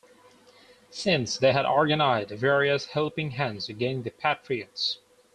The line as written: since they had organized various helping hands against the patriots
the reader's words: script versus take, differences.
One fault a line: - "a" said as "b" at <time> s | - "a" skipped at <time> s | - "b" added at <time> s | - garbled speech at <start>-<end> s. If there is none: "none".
none